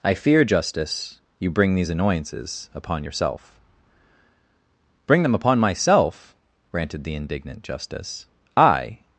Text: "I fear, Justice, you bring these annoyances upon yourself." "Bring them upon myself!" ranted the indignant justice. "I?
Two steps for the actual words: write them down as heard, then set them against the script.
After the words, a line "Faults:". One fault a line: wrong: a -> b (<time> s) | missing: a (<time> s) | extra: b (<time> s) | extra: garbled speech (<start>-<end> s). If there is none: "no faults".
"I fear, Justice, you bring these annoyances upon yourself." "Bring them upon myself!" ranted the indignant justice. "I?
Faults:
no faults